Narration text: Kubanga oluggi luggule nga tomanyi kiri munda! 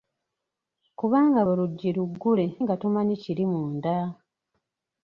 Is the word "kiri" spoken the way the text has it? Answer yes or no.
yes